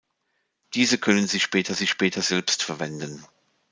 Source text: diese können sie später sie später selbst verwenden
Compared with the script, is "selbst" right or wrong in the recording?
right